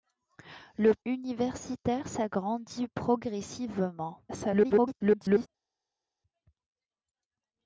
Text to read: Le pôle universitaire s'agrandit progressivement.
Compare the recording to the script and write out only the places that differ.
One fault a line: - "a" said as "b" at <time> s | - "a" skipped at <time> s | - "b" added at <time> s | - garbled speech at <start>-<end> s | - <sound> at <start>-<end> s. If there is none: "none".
- "pôle" skipped at 0.9 s
- garbled speech at 4.3-5.5 s